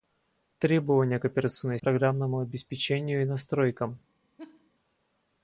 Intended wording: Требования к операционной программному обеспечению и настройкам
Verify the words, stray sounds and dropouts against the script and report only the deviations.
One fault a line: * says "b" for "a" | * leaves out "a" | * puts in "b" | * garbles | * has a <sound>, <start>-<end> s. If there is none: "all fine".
* has a laugh, 4.4-4.7 s